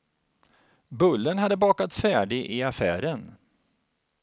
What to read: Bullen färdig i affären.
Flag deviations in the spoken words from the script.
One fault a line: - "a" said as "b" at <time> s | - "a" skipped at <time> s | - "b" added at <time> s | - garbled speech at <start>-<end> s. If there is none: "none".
- "hade bakats" added at 1.4 s